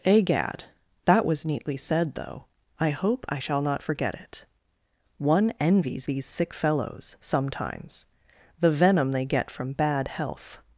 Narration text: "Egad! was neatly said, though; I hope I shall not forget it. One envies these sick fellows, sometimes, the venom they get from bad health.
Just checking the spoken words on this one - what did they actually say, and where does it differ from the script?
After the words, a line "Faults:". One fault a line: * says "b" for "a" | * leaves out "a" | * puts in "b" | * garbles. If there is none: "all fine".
"Egad! that was neatly said, though; I hope I shall not forget it. One envies these sick fellows, sometimes, the venom they get from bad health.
Faults:
* puts in "that"